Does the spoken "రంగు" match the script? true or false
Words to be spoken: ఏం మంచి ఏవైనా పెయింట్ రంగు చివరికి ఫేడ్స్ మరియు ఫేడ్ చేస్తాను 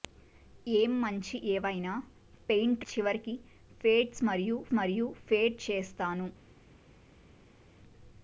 false